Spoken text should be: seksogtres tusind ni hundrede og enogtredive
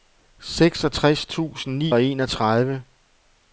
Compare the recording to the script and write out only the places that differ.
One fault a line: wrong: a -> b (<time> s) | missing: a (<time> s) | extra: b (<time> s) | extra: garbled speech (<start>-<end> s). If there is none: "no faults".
missing: hundrede (1.9 s)